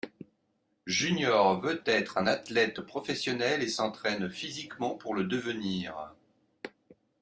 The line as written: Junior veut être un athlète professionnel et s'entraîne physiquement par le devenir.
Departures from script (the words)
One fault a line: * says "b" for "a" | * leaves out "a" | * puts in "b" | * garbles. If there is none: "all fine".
* says "pour" for "par"